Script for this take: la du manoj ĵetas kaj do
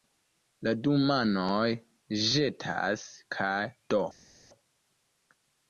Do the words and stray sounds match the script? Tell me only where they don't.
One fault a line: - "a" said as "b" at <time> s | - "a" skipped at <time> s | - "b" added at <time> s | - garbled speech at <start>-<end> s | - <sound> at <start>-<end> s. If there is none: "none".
none